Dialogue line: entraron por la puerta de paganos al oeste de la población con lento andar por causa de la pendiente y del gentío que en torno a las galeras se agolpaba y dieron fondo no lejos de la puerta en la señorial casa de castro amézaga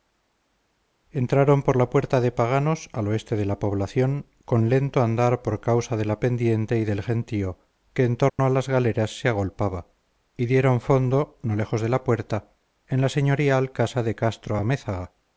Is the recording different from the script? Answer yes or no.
no